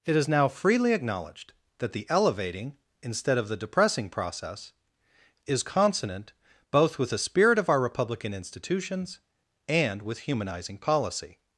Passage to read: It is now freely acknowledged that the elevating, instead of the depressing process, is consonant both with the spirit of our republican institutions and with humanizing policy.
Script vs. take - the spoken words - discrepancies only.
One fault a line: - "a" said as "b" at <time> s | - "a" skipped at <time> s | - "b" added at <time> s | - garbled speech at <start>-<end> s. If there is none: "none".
none